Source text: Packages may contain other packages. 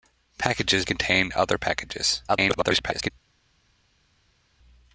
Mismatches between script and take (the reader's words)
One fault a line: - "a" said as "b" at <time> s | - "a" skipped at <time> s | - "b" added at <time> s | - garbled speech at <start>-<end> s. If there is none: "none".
- "may" skipped at 0.9 s
- garbled speech at 2.3-3.1 s